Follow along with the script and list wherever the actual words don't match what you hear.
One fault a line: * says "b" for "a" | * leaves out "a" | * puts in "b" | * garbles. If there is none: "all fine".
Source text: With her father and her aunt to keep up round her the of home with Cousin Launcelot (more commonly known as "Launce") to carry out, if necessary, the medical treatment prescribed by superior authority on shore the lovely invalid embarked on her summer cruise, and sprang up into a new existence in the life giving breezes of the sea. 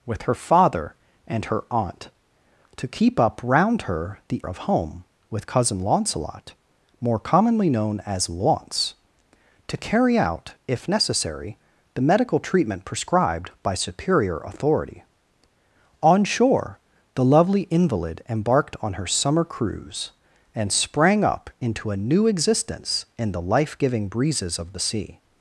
all fine